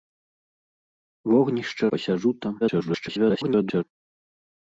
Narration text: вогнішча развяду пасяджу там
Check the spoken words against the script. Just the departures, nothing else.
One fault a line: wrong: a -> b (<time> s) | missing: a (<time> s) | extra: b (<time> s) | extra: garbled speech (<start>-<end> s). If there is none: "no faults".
missing: развяду (1.9 s)
extra: garbled speech (2.6-3.8 s)